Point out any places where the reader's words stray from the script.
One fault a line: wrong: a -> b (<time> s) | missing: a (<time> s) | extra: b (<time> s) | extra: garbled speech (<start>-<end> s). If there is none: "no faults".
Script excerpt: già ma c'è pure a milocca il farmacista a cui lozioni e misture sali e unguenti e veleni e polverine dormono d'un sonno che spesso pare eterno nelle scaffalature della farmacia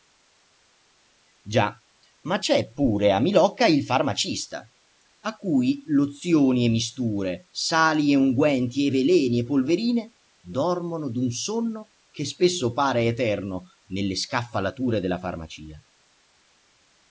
no faults